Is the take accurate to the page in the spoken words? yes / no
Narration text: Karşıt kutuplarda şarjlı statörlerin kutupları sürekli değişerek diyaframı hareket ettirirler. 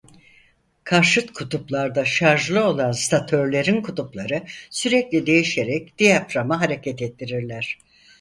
no